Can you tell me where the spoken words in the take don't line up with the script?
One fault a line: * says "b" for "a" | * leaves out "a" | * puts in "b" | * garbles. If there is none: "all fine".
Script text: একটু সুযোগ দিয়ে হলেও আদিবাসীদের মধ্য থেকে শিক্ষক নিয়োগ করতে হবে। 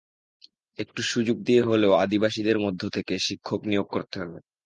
all fine